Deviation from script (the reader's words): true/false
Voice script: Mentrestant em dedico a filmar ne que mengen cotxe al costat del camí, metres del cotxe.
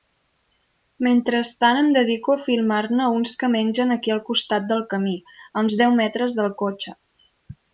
true